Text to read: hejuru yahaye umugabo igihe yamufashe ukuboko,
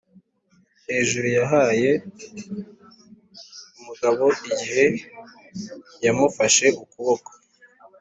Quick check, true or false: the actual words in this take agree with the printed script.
true